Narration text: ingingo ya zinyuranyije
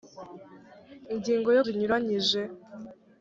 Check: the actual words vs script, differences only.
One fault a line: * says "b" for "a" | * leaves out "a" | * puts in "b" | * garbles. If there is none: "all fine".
all fine